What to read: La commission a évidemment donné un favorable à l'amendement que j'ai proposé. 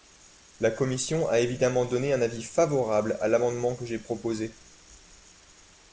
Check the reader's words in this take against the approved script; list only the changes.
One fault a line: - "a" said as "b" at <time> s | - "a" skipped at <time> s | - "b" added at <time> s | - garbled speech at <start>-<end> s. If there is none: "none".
- "avis" added at 2.2 s